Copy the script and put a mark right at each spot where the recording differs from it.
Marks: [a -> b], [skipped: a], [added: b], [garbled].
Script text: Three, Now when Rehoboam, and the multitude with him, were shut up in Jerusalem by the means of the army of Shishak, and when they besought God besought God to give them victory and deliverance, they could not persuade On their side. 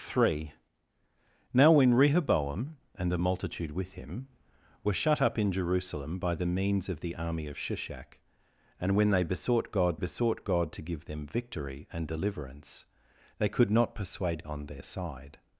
Three, Now when Rehoboam, and the multitude with him, were shut up in Jerusalem by the means of the army of Shishak, and when they besought God besought God to give them victory and deliverance, they could not persuade On their side.